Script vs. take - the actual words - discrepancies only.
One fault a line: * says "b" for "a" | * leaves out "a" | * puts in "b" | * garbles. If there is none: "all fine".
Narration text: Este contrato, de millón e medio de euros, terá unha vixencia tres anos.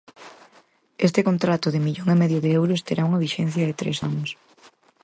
* puts in "de"